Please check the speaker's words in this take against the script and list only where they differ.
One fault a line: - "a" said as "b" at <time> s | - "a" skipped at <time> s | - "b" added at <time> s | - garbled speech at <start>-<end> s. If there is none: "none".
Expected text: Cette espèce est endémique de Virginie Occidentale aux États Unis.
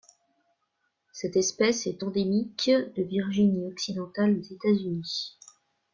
none